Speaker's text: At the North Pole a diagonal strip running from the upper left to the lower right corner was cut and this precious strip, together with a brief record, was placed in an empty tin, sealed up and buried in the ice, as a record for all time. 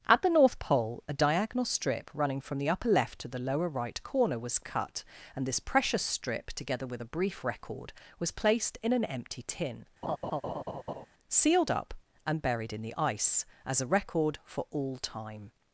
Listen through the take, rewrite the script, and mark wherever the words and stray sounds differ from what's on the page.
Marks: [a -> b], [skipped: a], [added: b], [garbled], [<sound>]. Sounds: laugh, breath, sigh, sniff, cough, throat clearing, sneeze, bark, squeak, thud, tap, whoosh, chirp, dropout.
At the North Pole a diagonal strip running from the upper left to the lower right corner was cut and this precious strip, together with a brief record, was placed in an empty tin, [laugh] sealed up and buried in the ice, as a record for all time.